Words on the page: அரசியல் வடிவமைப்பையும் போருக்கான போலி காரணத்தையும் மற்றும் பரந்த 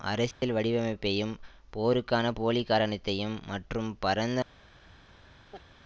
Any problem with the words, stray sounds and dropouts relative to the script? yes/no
yes